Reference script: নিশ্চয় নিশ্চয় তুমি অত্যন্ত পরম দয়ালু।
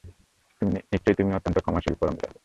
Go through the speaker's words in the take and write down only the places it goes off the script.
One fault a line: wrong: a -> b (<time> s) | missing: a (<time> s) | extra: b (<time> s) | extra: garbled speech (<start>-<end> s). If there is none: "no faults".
missing: নিশ্চয় (1.1 s)
extra: ক্ষমাশীল (1.6 s)